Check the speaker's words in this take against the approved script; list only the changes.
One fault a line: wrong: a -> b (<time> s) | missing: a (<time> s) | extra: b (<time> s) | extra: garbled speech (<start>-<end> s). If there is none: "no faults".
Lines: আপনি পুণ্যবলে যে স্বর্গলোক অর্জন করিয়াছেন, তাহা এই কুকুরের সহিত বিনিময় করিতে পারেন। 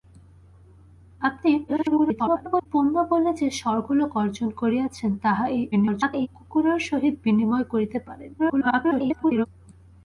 extra: garbled speech (1.7-2.7 s)
extra: garbled speech (5.7-6.3 s)
extra: garbled speech (8.4-9.5 s)